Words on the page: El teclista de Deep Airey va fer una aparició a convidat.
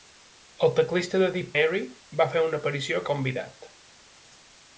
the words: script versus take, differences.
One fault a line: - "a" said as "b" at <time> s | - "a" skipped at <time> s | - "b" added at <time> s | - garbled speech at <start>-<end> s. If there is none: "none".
none